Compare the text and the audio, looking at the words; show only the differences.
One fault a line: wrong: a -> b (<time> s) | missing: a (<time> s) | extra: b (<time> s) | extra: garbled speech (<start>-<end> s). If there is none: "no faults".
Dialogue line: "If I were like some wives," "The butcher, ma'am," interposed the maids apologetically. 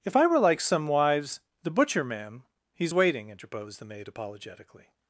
extra: he's waiting (2.7 s)
wrong: maids -> maid (3.9 s)